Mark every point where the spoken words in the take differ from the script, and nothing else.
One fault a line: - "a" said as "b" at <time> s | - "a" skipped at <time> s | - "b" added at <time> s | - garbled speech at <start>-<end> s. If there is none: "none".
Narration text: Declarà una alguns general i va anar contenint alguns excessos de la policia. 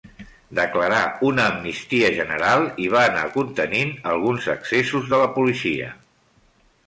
- "alguns" said as "amnistia" at 1.5 s